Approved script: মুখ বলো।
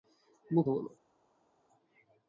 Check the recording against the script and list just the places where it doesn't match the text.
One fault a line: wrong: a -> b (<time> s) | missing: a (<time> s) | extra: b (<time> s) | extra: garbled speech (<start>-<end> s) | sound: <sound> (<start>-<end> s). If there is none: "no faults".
no faults